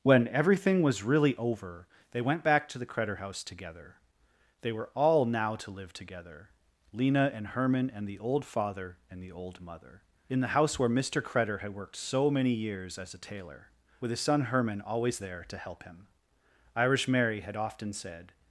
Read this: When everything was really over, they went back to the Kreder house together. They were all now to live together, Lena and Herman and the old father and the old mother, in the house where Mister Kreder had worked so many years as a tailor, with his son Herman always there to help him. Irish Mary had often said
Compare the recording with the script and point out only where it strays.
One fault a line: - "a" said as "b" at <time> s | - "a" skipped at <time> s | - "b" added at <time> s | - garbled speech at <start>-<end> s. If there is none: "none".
none